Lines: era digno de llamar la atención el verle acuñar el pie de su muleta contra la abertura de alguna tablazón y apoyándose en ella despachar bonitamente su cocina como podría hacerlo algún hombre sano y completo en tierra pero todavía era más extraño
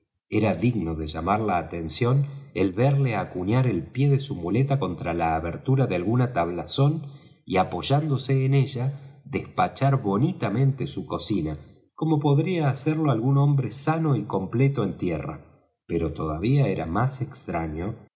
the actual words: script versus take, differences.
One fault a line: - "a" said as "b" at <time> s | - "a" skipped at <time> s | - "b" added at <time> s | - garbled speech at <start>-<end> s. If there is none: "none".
none